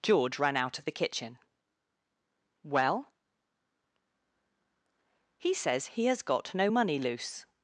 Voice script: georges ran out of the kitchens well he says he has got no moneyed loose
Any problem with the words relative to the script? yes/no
yes